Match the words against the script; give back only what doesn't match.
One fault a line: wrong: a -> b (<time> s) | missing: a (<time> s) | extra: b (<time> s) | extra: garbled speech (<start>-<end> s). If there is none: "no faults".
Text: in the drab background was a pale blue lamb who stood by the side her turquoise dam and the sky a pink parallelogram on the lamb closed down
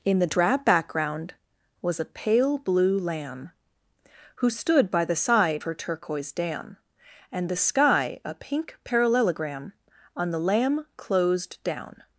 no faults